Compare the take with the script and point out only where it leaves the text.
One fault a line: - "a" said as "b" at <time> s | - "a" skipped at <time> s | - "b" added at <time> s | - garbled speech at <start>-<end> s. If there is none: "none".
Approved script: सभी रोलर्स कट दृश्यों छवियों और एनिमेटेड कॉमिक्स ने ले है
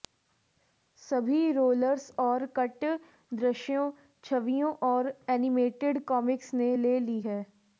- "और" added at 2.2 s
- "ली" added at 7.0 s